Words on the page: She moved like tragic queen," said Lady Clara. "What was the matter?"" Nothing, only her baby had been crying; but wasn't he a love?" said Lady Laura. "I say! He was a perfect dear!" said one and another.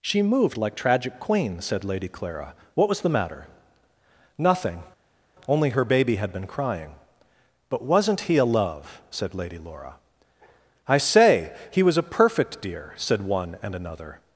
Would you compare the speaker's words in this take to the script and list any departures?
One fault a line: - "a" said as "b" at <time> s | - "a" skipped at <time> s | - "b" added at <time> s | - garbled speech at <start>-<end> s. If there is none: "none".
none